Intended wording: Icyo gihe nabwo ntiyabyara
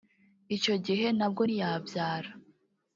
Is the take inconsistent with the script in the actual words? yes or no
no